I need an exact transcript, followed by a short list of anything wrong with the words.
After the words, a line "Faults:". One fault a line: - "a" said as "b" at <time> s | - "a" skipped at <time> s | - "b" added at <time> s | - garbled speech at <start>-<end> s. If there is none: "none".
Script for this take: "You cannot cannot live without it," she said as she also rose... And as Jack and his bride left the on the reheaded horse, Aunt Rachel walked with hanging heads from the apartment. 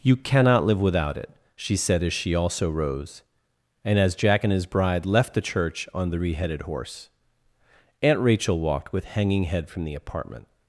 "You cannot live without it," she said as she also rose... And as Jack and his bride left the church on the reheaded horse, Aunt Rachel walked with hanging head from the apartment.
Faults:
- "cannot" skipped at 0.6 s
- "church" added at 5.4 s
- "heads" said as "head" at 9.4 s